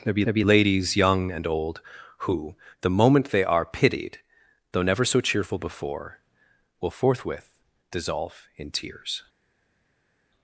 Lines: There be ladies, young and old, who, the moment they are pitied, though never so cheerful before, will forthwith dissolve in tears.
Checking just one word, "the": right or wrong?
right